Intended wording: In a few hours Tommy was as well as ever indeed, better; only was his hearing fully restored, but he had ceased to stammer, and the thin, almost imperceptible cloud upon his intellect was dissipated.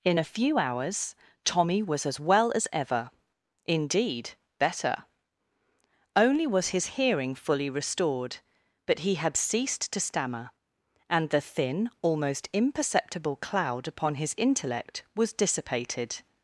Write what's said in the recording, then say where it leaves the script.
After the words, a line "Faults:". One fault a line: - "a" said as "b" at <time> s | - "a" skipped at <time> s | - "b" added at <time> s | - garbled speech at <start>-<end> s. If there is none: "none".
In a few hours Tommy was as well as ever indeed, better; only was his hearing fully restored, but he had ceased to stammer, and the thin, almost imperceptible cloud upon his intellect was dissipated.
Faults:
none